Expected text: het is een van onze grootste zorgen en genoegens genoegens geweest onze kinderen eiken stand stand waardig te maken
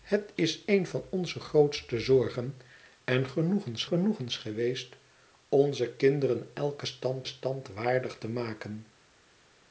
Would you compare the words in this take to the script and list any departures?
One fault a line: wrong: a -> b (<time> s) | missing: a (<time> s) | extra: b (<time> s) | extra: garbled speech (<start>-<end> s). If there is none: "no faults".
no faults